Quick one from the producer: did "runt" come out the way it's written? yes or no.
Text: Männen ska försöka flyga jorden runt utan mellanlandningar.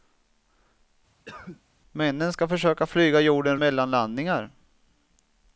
no